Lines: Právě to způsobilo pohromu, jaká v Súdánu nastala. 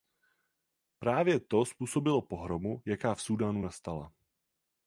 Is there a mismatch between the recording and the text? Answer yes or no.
no